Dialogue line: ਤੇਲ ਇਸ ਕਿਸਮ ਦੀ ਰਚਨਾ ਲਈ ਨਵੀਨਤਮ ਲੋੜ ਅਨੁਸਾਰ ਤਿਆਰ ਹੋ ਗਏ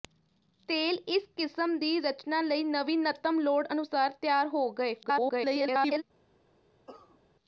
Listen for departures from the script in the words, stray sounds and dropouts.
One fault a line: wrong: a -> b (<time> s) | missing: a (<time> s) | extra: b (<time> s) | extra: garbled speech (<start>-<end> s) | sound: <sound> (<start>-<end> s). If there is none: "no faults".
extra: garbled speech (5.0-6.0 s)
sound: cough (6.9-7.2 s)